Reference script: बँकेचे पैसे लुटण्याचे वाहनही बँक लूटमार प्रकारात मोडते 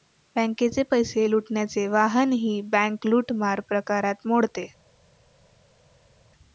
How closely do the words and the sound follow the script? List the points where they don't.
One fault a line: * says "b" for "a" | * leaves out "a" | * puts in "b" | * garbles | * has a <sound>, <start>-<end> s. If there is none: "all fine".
all fine